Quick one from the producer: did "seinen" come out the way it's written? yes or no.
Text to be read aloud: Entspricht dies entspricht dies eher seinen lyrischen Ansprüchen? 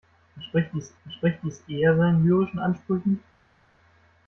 yes